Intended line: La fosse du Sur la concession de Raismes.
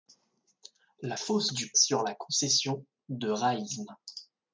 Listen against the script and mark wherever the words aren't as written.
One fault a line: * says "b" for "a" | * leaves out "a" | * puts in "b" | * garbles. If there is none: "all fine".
all fine